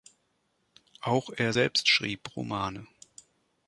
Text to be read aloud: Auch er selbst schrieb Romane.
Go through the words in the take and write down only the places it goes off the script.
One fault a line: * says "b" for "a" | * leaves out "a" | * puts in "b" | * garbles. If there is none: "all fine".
all fine